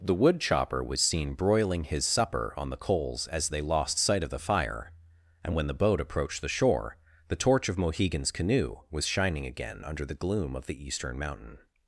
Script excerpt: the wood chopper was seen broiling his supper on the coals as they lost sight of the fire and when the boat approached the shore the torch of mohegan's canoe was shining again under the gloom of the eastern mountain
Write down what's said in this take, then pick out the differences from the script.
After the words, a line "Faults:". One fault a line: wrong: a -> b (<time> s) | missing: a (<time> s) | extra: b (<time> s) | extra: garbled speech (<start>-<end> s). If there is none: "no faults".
the wood chopper was seen broiling his supper on the coals as they lost sight of the fire and when the boat approached the shore the torch of mohegan's canoe was shining again under the gloom of the eastern mountain
Faults:
no faults